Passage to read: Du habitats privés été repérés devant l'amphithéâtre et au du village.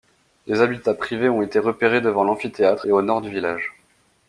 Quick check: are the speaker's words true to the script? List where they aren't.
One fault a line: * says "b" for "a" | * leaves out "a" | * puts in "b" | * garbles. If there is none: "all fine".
* says "Des" for "Du"
* puts in "ont"
* puts in "nord"